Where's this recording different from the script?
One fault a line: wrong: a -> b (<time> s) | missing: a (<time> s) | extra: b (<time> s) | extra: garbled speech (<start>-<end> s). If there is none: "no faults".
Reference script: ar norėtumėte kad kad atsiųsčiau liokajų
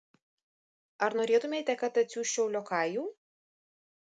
missing: kad (2.0 s)